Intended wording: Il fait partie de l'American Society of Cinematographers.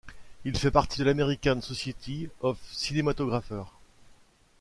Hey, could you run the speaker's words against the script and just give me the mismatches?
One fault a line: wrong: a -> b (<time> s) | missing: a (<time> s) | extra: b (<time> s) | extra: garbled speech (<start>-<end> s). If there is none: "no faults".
no faults